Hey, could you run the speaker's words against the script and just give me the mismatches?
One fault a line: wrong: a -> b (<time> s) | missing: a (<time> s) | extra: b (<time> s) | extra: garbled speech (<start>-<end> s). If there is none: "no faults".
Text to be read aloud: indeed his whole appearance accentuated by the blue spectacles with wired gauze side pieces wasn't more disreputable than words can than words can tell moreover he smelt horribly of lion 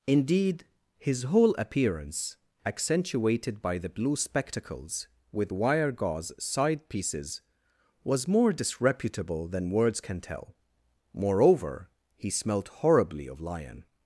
wrong: wired -> wire (5.5 s)
wrong: wasn't -> was (8.0 s)
missing: than words can (10.2 s)